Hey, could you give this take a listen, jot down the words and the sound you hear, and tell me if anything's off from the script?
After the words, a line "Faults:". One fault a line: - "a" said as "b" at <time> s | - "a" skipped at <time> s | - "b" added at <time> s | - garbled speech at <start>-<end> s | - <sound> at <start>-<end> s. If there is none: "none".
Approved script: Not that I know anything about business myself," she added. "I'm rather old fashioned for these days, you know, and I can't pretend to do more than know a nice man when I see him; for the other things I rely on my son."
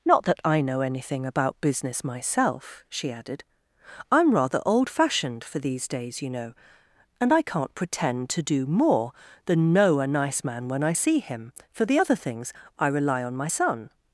Not that I know anything about business myself," she added. "I'm rather old fashioned for these days, you know, and I can't pretend to do more than know a nice man when I see him; for the other things I rely on my son."
Faults:
none